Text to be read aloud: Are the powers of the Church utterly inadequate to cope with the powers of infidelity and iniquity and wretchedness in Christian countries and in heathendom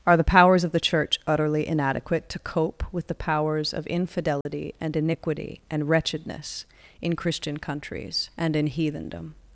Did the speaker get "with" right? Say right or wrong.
right